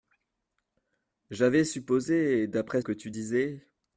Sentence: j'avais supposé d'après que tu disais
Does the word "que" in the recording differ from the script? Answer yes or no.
no